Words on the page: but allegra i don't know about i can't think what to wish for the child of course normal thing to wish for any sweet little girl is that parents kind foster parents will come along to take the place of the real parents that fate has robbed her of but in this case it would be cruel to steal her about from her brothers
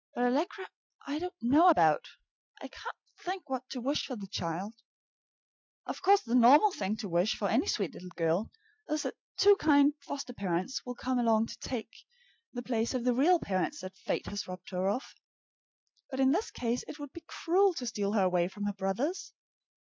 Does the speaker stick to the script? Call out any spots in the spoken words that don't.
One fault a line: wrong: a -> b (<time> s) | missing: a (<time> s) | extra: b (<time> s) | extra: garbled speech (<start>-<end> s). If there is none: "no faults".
extra: the (6.2 s)
wrong: parents -> two (9.4 s)
wrong: about -> away (18.2 s)